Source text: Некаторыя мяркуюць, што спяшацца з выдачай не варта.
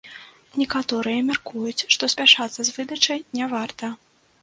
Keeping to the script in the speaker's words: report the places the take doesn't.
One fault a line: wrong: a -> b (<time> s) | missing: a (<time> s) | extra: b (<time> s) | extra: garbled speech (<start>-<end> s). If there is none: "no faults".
no faults